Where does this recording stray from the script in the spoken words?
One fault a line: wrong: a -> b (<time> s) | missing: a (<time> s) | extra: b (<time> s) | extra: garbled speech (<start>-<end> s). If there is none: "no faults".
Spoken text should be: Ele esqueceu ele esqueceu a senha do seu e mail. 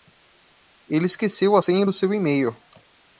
missing: ele esqueceu (1.6 s)